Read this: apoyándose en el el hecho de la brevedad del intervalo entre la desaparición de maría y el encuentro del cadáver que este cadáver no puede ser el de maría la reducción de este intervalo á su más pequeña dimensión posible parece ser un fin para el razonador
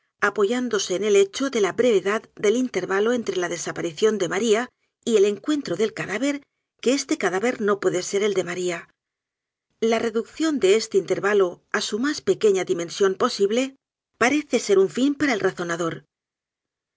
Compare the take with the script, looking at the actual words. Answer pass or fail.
fail